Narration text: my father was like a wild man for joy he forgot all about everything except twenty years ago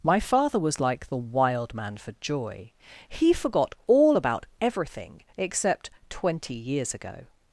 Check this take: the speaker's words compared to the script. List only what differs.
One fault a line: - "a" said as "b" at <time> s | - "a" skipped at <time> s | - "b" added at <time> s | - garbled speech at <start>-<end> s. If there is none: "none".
- "a" said as "the" at 1.1 s